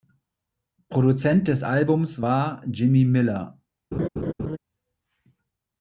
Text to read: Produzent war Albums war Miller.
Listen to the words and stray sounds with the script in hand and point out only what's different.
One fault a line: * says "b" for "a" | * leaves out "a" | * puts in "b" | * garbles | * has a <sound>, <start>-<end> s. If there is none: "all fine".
* says "des" for "war"
* puts in "Jimmy"
* has a laugh, 3.9-4.6 s